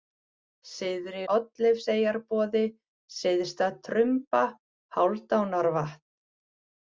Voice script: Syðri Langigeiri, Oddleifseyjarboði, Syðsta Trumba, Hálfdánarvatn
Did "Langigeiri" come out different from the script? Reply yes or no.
yes